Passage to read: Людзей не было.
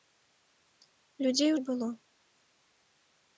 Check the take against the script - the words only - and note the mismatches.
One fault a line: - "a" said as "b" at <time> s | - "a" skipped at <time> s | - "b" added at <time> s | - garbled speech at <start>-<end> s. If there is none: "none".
none